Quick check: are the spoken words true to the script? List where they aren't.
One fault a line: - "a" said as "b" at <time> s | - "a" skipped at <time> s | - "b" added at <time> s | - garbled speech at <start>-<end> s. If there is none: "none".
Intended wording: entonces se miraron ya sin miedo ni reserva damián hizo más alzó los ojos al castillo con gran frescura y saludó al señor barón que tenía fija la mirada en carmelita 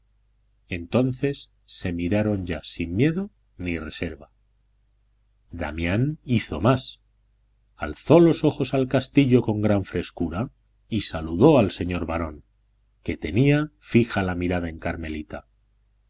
none